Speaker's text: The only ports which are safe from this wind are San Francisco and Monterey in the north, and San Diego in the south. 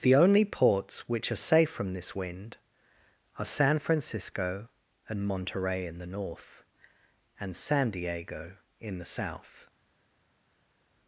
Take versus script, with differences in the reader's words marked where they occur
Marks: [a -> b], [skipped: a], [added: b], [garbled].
The only ports which are safe from this wind are San Francisco and Monterey in the north, and San Diego in the south.